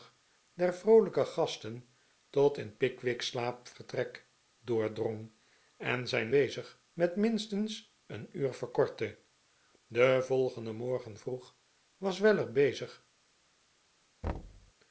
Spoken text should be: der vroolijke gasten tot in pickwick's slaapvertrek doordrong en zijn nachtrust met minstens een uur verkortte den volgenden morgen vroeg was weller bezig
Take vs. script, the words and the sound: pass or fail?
fail